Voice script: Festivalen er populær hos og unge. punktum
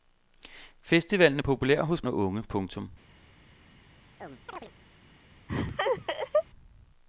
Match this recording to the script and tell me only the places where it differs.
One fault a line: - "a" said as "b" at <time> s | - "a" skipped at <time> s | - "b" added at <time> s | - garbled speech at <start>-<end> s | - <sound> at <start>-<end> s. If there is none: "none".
- chirp at 4.2-4.7 s
- laugh at 5.5-6.4 s